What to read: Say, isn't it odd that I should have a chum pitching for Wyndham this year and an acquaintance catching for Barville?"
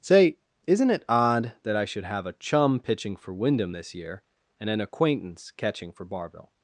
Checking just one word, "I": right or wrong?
right